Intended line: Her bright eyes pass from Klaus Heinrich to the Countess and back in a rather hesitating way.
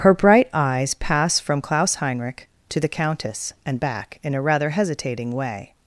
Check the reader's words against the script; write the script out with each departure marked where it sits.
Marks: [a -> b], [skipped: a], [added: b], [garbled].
Her bright eyes pass from Klaus Heinrich to the Countess and back in a rather hesitating way.